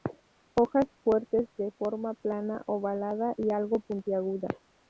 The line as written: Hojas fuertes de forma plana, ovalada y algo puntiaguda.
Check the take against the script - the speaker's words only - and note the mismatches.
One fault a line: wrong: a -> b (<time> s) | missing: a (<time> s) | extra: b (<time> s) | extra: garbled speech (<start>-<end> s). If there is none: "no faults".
no faults